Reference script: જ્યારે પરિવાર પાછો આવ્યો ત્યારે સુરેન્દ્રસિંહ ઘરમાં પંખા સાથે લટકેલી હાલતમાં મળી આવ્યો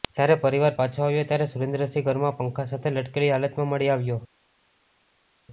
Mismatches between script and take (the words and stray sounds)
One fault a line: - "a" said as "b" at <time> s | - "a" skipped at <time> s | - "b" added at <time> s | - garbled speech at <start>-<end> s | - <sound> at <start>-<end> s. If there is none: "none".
none